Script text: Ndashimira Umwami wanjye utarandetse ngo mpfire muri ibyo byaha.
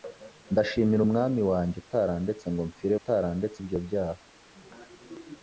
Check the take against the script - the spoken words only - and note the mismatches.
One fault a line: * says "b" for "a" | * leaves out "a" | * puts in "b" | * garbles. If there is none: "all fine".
* says "utarandetse" for "muri"